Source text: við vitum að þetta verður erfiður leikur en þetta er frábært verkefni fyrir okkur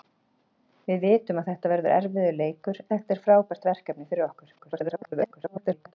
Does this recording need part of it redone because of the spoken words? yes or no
yes